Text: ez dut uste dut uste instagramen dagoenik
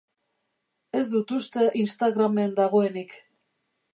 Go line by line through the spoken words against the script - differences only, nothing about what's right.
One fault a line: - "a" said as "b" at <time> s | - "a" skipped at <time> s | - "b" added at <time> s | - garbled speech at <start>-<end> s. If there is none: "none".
- "dut uste" skipped at 1.7 s